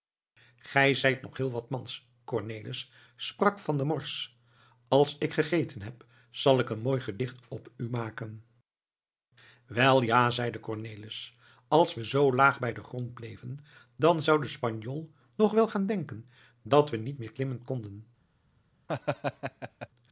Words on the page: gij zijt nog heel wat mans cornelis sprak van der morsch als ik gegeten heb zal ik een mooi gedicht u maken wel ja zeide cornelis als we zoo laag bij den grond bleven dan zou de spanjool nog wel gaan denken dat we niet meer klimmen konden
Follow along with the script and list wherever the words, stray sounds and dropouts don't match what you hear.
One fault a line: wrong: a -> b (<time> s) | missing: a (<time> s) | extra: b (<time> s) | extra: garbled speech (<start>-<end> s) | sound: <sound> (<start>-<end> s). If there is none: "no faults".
extra: op (7.5 s)
sound: laugh (18.9-19.9 s)